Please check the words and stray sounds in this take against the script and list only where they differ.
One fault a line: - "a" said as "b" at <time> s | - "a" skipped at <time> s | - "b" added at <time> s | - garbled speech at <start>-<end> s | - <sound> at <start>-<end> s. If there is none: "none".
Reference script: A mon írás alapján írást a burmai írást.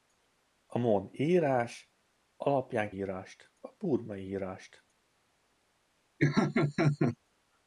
- laugh at 6.2-7.2 s